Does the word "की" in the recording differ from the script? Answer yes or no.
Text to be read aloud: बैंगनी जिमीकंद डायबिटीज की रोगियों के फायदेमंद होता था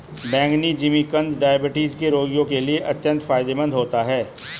yes